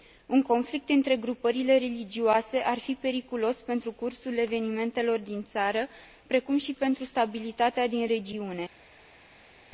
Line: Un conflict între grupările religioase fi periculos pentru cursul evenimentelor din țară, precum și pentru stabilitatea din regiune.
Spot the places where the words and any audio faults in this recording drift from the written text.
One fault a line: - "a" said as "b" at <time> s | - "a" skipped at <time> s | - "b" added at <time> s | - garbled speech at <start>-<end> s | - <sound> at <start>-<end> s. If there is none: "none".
- "ar" added at 2.6 s